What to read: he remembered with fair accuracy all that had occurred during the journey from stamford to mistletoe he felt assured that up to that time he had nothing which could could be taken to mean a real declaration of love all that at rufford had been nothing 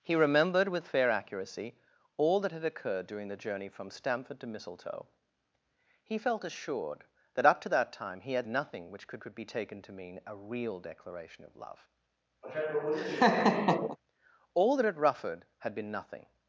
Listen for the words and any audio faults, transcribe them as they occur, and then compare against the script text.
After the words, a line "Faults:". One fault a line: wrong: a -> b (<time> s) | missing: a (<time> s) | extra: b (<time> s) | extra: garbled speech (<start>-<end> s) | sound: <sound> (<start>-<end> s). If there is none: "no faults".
he remembered with fair accuracy all that had occurred during the journey from stamford to mistletoe he felt assured that up to that time he had nothing which could could be taken to mean a real declaration of love all that at rufford had been nothing
Faults:
sound: laugh (12.4-14.0 s)